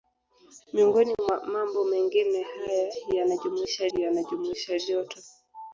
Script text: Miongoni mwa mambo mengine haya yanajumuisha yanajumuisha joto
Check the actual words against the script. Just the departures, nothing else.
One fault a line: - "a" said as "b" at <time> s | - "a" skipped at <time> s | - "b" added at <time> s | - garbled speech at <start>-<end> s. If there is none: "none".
none